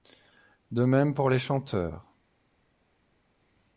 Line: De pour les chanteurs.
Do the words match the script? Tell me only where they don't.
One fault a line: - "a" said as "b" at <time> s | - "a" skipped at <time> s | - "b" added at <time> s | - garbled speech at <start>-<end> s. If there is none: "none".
- "même" added at 0.8 s